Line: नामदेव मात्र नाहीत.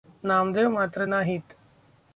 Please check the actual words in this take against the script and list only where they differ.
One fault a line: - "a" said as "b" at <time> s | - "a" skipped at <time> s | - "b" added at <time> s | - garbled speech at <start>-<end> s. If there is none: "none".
none